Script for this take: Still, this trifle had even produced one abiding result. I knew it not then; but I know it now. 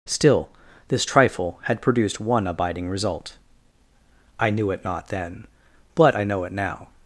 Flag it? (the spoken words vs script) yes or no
yes